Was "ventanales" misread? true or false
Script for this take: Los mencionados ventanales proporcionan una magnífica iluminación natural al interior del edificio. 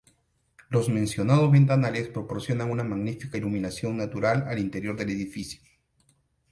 false